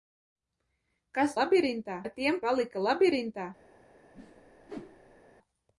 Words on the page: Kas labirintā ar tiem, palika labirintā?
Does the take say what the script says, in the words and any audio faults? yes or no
no